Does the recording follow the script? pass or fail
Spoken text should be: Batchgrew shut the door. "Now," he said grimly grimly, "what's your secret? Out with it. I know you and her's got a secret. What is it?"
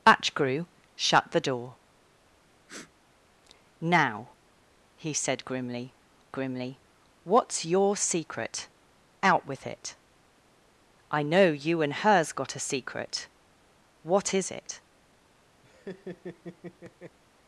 pass